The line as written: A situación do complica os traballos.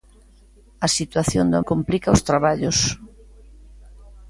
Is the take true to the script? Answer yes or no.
yes